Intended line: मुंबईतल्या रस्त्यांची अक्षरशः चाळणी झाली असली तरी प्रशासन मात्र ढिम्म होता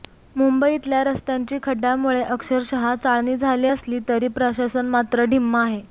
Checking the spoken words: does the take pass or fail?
fail